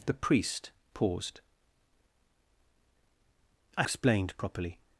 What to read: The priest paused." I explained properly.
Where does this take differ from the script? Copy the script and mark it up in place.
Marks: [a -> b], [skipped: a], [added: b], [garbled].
The priest paused." I explained properly.